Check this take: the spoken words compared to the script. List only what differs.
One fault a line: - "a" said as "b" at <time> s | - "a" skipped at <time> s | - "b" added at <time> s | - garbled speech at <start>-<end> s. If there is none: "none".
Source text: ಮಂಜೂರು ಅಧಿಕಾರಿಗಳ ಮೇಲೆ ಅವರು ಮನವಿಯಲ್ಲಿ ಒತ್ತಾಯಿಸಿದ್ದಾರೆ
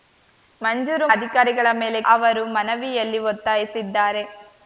none